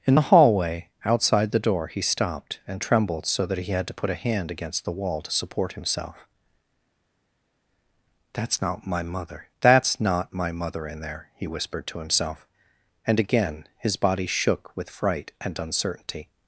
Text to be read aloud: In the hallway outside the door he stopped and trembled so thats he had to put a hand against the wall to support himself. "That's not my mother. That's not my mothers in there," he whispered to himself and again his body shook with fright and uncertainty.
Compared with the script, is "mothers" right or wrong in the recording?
wrong